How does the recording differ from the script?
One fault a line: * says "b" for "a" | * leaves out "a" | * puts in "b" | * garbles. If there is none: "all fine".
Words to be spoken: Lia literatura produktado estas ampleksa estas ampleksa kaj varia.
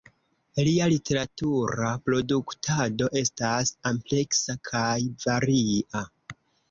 * leaves out "estas ampleksa"